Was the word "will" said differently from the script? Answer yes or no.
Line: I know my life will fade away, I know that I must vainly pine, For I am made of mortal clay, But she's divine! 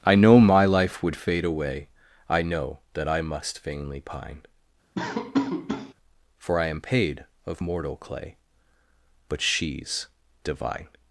yes